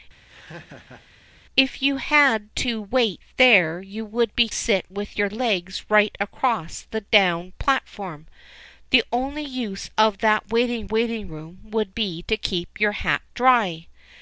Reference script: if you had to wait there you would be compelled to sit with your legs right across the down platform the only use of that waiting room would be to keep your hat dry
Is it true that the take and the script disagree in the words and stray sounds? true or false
true